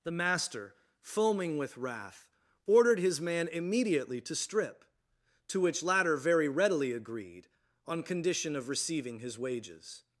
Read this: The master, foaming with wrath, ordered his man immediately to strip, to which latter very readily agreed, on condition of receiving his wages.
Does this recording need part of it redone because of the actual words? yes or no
no